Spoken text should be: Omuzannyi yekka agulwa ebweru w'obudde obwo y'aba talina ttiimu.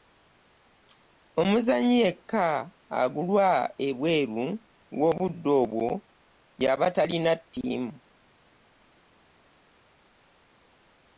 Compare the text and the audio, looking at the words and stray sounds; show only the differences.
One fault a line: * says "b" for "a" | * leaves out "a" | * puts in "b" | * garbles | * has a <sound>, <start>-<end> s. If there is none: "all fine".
all fine